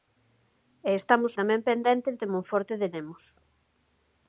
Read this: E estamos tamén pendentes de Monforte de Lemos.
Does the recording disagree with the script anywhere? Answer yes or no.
no